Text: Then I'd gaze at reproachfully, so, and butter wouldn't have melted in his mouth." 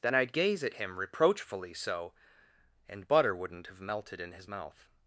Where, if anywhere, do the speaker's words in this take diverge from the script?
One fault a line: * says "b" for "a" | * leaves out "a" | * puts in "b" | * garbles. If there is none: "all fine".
* puts in "him"